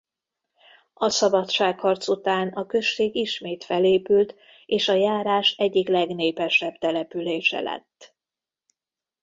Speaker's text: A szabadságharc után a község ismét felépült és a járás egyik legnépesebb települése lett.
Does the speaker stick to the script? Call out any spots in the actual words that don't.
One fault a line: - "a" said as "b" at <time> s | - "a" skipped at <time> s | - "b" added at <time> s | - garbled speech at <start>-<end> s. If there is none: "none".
none